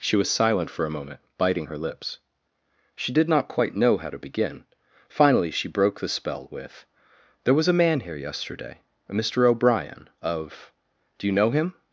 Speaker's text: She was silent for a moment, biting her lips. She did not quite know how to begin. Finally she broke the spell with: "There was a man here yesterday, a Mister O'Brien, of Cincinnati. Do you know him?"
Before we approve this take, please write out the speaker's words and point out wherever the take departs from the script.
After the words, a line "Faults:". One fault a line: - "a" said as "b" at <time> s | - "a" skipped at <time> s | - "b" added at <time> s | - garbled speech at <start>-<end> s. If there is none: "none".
She was silent for a moment, biting her lips. She did not quite know how to begin. Finally she broke the spell with: "There was a man here yesterday, a Mister O'Brien, of. Do you know him?"
Faults:
- "Cincinnati" skipped at 10.7 s